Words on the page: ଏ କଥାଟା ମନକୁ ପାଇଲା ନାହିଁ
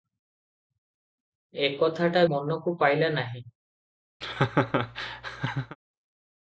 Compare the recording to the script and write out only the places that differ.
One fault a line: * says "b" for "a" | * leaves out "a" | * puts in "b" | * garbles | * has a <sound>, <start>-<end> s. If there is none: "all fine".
* has a laugh, 4.2-5.8 s